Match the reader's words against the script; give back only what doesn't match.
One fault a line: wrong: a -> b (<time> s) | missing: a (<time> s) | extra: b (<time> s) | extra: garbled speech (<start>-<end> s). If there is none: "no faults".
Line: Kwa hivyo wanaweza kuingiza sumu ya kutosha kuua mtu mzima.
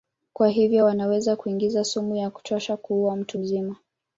no faults